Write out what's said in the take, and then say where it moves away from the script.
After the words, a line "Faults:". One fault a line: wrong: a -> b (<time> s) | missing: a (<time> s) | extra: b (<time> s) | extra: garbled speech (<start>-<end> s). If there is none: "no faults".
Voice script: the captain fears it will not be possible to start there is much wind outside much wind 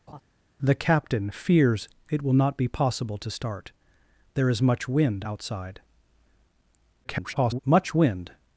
the captain fears it will not be possible to start there is much wind outside [garbled] much wind
Faults:
extra: garbled speech (7.0-7.6 s)